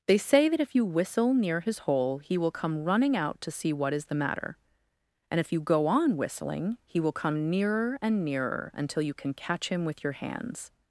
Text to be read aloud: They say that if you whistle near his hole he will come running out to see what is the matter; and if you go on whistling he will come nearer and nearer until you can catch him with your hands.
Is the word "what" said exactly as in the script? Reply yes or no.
yes